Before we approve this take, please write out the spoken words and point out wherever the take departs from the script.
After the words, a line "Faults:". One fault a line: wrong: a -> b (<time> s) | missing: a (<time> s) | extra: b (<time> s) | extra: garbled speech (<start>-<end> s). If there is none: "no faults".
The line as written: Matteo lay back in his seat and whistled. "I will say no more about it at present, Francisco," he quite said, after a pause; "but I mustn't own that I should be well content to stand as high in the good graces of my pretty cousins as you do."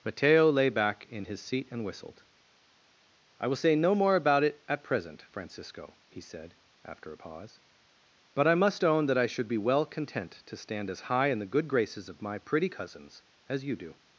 Matteo lay back in his seat and whistled. "I will say no more about it at present, Francisco," he said, after a pause; "but I must own that I should be well content to stand as high in the good graces of my pretty cousins as you do."
Faults:
missing: quite (6.2 s)
wrong: mustn't -> must (8.5 s)